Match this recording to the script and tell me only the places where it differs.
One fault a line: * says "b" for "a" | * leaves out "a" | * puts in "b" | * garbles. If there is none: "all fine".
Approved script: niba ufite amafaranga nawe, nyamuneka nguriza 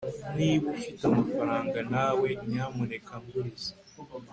all fine